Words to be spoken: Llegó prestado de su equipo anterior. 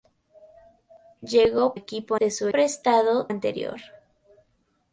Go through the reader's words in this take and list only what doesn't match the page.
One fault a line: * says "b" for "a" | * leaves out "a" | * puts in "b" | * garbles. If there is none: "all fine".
* says "equipo" for "prestado"
* says "prestado" for "equipo"